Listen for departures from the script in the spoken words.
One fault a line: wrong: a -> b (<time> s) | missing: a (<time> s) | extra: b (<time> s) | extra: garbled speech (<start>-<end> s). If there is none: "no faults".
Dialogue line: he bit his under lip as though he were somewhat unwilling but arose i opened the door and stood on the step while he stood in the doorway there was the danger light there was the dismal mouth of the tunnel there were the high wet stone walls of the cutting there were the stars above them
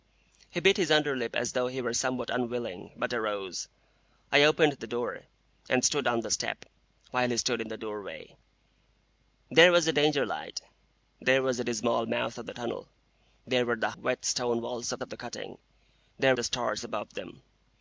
missing: high (13.9 s)
extra: of (15.0 s)
missing: were (16.3 s)